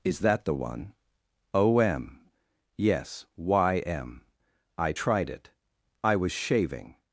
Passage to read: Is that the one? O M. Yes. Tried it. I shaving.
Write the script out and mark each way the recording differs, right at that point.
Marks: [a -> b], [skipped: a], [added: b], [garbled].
Is that the one? O M. Yes. [added: Y M I] Tried it. I [added: was] shaving.